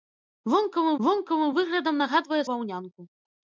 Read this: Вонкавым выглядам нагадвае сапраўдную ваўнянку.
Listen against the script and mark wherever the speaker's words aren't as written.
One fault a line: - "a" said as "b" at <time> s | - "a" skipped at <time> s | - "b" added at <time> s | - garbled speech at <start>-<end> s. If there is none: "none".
- "вонкавым" added at 1.1 s
- "сапраўдную" skipped at 2.4 s